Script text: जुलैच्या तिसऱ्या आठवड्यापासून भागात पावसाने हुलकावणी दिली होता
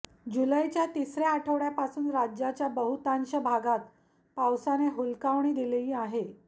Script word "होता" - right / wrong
wrong